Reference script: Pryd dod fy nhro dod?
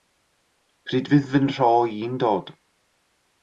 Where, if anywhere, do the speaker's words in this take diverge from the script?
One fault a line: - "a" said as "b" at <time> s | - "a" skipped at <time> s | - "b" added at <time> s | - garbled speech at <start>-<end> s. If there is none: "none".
- "dod" said as "fydd" at 1.1 s
- "i'n" added at 2.0 s